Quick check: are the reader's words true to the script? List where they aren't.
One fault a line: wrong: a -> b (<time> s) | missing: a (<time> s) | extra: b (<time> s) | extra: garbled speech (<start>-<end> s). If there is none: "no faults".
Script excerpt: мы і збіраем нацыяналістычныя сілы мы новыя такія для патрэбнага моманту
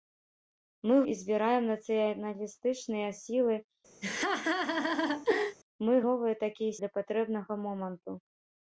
no faults